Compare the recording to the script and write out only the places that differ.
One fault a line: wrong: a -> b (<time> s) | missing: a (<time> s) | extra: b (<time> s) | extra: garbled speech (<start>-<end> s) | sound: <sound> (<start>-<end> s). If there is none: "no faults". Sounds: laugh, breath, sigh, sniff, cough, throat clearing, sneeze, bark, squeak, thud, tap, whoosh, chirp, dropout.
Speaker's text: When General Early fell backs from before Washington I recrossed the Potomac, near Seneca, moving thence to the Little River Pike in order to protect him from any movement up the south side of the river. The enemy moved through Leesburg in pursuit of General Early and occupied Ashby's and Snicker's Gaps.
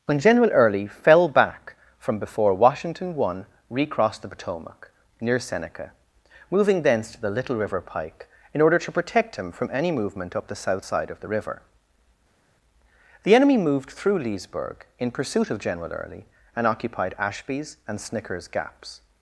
wrong: backs -> back (1.3 s)